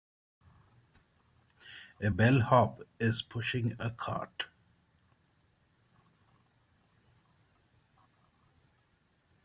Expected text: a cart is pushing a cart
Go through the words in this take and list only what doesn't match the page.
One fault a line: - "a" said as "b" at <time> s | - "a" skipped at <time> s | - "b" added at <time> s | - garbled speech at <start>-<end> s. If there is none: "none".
- "cart" said as "bellhop" at 2.1 s